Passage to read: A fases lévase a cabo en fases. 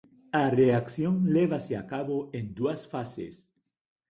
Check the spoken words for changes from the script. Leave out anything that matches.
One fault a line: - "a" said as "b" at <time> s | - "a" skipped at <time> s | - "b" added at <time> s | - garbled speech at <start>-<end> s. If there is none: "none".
- "fases" said as "reacción" at 0.6 s
- "dúas" added at 2.6 s